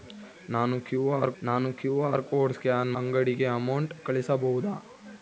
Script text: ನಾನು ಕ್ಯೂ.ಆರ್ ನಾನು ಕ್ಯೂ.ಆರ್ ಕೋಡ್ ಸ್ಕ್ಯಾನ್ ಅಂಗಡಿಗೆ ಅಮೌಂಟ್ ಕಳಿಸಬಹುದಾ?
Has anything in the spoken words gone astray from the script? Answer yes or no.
no